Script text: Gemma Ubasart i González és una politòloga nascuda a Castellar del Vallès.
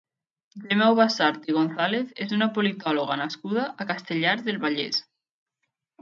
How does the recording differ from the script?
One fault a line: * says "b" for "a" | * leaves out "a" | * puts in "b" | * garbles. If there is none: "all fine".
all fine